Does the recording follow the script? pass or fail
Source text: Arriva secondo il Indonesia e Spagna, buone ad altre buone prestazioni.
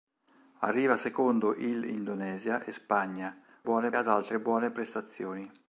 pass